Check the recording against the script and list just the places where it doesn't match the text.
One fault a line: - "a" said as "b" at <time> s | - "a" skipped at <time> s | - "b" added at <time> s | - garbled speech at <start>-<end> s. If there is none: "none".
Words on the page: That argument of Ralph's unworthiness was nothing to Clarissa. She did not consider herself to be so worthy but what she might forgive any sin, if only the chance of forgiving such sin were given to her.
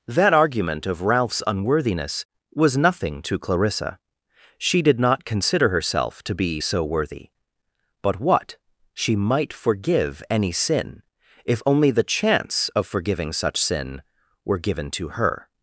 none